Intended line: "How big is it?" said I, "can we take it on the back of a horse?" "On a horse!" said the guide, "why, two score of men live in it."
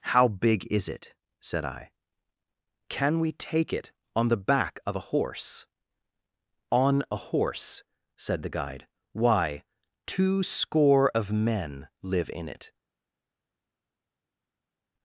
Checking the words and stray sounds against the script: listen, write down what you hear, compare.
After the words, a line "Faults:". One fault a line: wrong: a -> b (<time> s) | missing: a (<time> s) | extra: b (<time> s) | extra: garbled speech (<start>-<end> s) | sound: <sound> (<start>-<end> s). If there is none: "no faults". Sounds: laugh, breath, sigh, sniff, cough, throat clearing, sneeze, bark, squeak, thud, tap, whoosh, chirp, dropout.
"How big is it?" said I, "can we take it on the back of a horse?" "On a horse!" said the guide, "why, two score of men live in it."
Faults:
no faults